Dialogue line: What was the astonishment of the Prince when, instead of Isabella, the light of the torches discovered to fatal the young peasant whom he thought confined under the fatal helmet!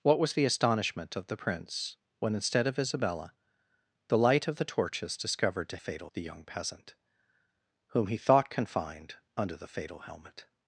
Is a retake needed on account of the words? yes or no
no